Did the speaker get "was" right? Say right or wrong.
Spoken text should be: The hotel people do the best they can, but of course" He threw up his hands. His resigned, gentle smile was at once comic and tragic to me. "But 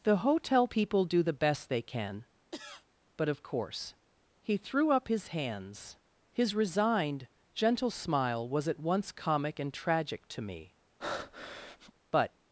right